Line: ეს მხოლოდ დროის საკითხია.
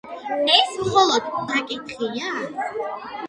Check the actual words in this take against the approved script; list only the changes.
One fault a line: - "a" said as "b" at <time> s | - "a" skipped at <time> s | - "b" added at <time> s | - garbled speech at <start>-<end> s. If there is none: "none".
- "დროის" skipped at 1.3 s